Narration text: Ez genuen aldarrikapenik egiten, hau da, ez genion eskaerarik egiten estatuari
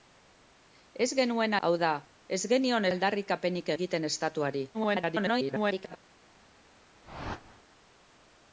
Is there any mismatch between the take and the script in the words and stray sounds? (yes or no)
yes